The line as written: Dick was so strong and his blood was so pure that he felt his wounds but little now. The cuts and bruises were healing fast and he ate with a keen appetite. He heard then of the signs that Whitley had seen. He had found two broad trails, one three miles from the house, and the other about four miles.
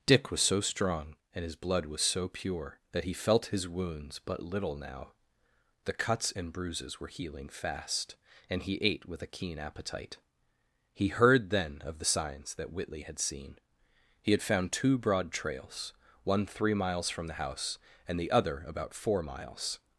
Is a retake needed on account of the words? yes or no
no